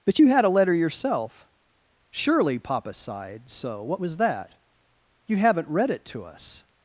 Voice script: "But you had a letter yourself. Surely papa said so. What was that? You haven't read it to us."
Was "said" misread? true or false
true